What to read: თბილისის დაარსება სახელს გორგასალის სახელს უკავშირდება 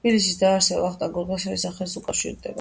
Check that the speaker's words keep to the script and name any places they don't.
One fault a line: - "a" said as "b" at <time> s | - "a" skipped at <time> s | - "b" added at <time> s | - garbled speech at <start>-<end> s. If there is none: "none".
- "სახელს" said as "ვახტანგ" at 0.8 s